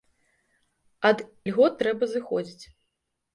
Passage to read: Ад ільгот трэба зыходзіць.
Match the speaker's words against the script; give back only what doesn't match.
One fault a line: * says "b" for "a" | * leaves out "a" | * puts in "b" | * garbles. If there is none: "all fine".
all fine